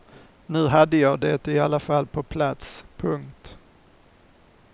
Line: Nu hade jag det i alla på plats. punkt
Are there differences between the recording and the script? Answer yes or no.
yes